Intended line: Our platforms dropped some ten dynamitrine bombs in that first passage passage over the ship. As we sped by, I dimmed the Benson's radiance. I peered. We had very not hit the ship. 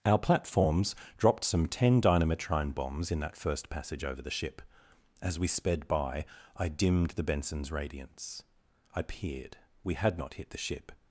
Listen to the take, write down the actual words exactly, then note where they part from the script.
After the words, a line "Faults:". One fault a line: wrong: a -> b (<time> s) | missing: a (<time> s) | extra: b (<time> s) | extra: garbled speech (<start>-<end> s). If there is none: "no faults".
Our platforms dropped some ten dynamitrine bombs in that first passage over the ship. As we sped by, I dimmed the Benson's radiance. I peered. We had not hit the ship.
Faults:
missing: passage (4.0 s)
missing: very (10.2 s)